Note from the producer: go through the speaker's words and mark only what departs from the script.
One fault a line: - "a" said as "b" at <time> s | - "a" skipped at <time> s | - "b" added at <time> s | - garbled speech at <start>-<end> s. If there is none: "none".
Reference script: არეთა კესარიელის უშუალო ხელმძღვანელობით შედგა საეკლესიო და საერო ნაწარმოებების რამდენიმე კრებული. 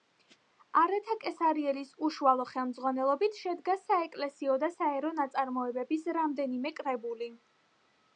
none